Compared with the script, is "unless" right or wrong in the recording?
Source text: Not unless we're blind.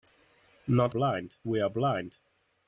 wrong